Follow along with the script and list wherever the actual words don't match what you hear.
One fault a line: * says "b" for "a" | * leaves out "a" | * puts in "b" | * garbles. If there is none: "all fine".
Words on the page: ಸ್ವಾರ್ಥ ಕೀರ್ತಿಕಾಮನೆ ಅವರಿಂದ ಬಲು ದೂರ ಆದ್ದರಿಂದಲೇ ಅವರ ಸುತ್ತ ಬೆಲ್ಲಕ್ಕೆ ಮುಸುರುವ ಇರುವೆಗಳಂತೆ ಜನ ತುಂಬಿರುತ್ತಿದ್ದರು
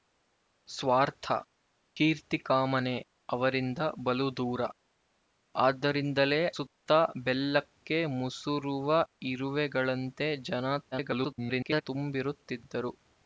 * leaves out "ಅವರ"
* garbles